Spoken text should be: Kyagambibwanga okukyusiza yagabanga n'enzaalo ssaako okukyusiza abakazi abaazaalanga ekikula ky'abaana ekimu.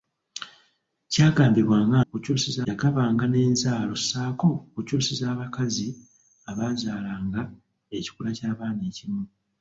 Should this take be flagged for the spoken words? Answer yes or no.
no